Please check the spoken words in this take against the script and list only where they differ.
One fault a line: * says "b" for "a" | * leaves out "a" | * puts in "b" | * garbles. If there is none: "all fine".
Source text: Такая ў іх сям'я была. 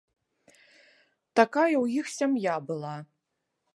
all fine